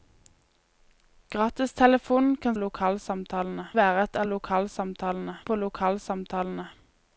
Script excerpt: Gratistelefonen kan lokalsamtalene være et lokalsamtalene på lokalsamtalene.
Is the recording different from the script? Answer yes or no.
no